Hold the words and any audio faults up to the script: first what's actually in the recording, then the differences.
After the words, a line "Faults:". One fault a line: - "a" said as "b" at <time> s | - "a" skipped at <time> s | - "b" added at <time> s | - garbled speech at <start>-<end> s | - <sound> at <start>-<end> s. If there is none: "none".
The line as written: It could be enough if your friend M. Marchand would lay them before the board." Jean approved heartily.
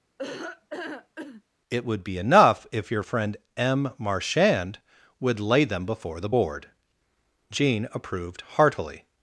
It would be enough if your friend M. Marchand would lay them before the board." Jean approved heartily.
Faults:
- laugh at 0.2-1.4 s
- "could" said as "would" at 1.9 s